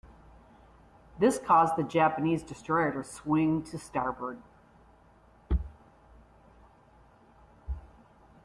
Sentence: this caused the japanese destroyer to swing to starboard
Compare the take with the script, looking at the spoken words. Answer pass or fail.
pass